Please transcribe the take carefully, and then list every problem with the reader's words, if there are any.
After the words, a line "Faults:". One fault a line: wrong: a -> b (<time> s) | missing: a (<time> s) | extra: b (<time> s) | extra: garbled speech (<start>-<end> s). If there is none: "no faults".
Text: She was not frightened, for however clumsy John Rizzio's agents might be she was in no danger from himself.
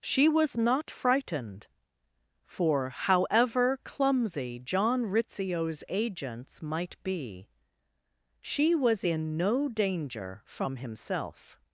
She was not frightened, for however clumsy John Rizzio's agents might be she was in no danger from himself.
Faults:
no faults